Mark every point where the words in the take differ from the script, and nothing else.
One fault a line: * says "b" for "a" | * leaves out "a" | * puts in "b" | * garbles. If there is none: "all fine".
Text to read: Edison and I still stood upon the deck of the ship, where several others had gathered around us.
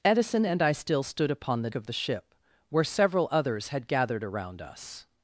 * leaves out "deck"